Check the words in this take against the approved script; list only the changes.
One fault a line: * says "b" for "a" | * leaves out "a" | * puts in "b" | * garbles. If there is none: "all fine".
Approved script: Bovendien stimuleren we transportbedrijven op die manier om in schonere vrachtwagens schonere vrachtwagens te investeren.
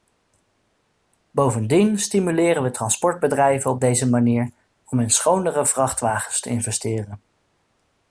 * says "deze" for "die"
* leaves out "schonere vrachtwagens"